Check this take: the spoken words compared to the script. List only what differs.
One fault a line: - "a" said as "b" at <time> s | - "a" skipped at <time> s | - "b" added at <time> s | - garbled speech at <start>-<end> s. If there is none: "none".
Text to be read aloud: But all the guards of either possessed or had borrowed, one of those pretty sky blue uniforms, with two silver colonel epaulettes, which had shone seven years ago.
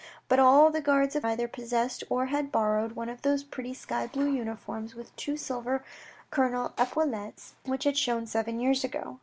none